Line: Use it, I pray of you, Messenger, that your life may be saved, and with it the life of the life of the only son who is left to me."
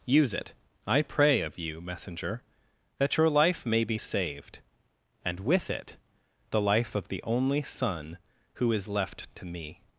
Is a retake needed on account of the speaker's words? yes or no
yes